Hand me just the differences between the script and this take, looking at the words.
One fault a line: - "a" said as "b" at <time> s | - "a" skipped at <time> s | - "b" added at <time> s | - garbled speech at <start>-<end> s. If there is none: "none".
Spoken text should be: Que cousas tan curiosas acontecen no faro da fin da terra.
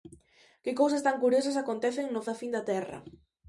- "faro" skipped at 2.2 s